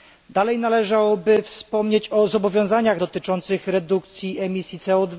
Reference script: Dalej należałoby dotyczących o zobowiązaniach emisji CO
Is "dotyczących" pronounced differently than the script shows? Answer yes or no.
yes